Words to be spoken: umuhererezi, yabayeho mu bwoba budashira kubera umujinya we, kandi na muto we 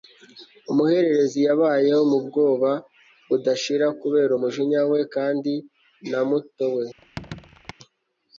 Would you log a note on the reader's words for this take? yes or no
no